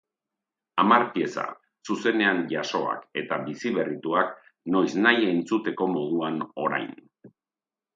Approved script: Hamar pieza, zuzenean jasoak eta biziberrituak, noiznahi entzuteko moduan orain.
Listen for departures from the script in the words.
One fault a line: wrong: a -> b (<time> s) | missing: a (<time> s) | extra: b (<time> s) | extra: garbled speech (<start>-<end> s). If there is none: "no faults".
no faults